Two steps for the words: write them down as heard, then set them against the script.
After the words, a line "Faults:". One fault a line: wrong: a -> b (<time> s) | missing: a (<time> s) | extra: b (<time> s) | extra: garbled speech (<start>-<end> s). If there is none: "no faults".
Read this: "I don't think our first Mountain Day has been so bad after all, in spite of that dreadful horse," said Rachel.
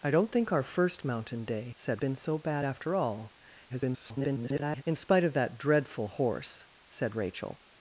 "I don't think our first Mountain Day said been so bad after all, [garbled] in spite of that dreadful horse," said Rachel.
Faults:
wrong: has -> said (1.7 s)
extra: garbled speech (3.7-4.8 s)